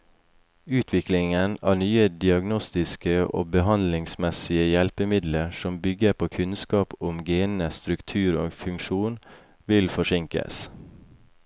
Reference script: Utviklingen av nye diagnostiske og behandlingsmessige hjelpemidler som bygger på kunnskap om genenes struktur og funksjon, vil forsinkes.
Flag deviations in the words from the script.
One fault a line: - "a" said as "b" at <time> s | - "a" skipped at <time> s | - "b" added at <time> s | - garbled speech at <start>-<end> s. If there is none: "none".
none